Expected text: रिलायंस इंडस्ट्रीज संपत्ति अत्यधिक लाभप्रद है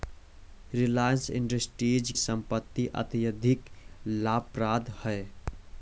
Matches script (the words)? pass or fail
pass